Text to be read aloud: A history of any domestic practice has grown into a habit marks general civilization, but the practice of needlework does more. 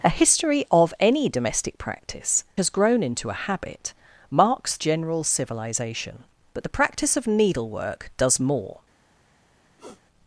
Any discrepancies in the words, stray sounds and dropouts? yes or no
yes